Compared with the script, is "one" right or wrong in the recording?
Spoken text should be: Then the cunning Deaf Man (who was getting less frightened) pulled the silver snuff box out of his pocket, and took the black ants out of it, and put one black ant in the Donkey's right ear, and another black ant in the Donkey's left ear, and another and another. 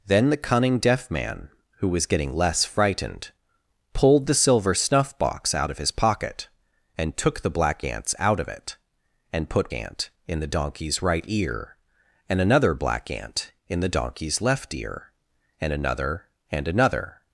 wrong